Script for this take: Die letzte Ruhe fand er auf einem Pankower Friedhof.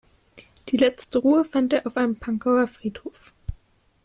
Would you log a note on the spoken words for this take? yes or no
no